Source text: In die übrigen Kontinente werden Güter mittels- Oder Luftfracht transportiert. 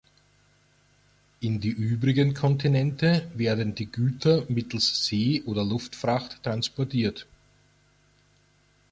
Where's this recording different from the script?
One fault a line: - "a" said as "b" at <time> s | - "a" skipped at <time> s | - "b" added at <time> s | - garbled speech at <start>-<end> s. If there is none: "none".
- "die" added at 3.8 s
- "See" added at 5.1 s